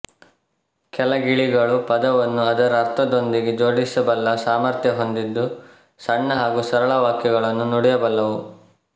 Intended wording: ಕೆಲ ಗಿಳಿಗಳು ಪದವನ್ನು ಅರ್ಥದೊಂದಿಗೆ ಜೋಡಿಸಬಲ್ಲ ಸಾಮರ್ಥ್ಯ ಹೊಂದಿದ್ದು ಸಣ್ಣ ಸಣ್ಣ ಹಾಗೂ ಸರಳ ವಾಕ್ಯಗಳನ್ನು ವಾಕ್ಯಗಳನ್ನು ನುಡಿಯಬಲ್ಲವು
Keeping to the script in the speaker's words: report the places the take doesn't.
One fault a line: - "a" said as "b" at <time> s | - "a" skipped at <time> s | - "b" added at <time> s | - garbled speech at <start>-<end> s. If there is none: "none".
- "ಅದರ" added at 2.4 s
- "ಸಣ್ಣ" skipped at 6.4 s
- "ವಾಕ್ಯಗಳನ್ನು" skipped at 7.7 s